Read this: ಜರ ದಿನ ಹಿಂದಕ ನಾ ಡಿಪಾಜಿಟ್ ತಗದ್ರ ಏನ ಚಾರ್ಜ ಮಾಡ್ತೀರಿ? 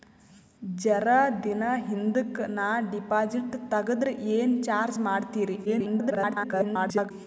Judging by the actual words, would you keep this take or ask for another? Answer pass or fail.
fail